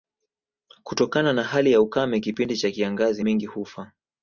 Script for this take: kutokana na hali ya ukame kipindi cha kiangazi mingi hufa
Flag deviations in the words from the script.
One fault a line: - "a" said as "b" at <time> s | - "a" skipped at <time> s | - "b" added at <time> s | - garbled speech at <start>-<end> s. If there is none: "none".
none